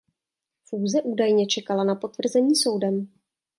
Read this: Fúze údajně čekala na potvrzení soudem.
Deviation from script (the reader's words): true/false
false